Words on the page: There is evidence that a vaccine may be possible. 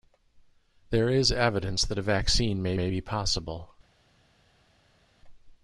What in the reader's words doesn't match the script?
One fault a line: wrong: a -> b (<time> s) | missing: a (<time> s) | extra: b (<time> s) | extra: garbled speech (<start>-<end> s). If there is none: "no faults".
extra: may (2.8 s)